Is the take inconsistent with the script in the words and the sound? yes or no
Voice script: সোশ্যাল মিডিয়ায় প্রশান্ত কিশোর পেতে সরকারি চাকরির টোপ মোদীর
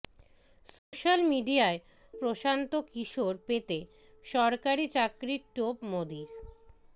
yes